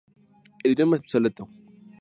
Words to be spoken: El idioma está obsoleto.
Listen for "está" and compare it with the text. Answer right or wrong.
wrong